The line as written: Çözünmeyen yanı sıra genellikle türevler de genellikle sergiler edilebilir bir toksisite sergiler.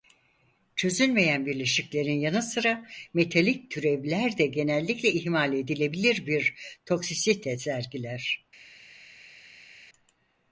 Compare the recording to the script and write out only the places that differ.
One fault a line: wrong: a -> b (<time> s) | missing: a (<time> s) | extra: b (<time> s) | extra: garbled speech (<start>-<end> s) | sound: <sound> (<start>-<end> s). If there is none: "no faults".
extra: bileşiklerin (1.4 s)
wrong: genellikle -> metalik (3.1 s)
wrong: sergiler -> ihmal (5.1 s)